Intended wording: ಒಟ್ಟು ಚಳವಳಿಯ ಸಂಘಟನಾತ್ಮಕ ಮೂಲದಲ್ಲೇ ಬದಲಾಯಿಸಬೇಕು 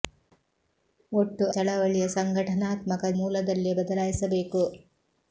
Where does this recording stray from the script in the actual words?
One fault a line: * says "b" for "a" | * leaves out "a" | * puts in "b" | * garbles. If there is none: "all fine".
all fine